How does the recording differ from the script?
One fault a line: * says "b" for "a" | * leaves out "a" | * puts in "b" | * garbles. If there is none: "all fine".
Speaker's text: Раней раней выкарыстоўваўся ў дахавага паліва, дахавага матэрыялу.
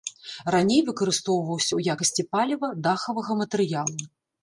* leaves out "раней"
* says "якасці" for "дахавага"